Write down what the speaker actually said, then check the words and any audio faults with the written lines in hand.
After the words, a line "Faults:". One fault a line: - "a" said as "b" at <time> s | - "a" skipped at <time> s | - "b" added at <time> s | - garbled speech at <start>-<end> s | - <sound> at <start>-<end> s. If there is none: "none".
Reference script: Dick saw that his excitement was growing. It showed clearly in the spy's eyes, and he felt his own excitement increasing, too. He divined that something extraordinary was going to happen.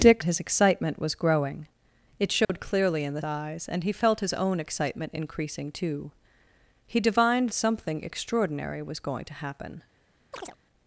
Dick his excitement was growing. It showed clearly in the eyes, and he felt his own excitement increasing, too. He divined something extraordinary was going to happen.
Faults:
- "saw that" skipped at 0.2 s
- dropout at 2.4-2.5 s
- "spy's" skipped at 3.2 s
- "that" skipped at 7.5 s
- chirp at 10.3-10.6 s